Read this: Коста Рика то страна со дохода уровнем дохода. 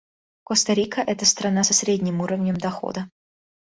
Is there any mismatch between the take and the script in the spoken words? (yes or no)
yes